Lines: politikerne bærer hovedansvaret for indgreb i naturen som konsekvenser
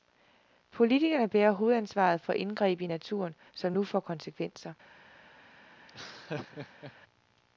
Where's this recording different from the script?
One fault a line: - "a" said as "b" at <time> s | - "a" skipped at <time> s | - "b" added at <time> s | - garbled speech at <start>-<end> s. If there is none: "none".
- "nu får" added at 3.7 s